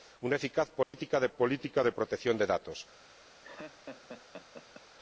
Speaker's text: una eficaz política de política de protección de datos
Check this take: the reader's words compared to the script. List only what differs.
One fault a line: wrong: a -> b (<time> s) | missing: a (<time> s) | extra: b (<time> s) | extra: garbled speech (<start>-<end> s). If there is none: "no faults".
no faults